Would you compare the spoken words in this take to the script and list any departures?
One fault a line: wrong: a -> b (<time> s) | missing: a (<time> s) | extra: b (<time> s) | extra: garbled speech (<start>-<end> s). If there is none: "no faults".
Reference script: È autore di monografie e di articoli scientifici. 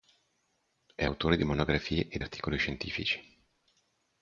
missing: di (2.2 s)